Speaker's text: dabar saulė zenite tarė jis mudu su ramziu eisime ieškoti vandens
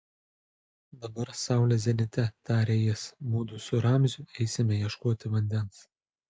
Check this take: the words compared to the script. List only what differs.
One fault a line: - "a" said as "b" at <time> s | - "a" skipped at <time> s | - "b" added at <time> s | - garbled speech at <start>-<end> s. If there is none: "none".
none